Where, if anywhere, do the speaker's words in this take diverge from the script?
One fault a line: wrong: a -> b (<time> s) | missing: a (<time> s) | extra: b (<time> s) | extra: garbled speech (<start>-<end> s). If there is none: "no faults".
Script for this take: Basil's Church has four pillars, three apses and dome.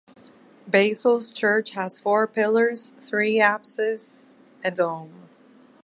no faults